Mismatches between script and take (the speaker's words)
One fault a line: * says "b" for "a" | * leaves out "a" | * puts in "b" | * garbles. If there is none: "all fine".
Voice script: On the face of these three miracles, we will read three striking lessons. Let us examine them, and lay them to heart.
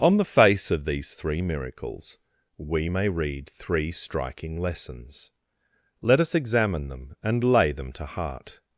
* says "may" for "will"